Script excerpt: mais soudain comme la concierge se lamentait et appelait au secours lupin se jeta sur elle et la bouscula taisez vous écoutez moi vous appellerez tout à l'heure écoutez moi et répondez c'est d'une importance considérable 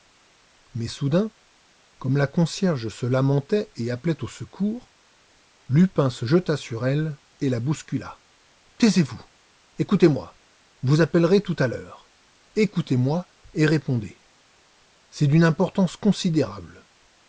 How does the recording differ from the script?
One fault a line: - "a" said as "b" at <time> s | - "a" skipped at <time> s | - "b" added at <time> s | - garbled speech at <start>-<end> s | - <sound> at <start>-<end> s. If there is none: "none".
none